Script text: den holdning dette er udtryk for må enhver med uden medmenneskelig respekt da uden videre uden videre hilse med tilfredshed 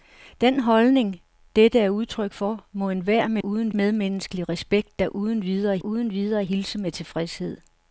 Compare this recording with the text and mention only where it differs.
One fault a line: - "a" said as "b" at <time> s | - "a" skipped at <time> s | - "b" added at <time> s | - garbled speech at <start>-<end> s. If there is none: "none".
none